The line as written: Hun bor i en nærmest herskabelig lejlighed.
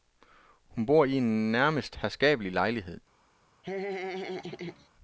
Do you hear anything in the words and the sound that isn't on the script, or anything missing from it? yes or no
yes